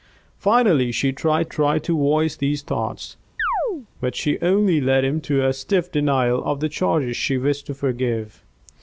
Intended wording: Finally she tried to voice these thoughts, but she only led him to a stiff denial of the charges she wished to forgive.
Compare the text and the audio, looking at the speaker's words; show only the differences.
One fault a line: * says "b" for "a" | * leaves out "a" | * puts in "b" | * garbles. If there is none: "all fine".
* puts in "tried"